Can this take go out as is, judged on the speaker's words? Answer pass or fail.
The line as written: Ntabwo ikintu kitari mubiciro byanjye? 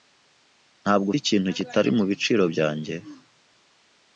pass